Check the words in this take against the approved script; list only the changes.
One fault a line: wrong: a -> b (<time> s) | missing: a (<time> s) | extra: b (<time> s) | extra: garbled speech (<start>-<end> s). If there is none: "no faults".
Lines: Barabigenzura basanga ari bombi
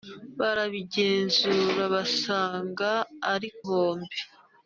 no faults